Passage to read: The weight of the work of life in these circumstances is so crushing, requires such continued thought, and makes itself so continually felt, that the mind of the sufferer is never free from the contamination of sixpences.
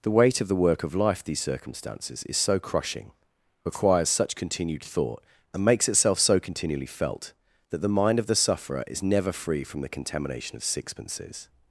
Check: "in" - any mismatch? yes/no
yes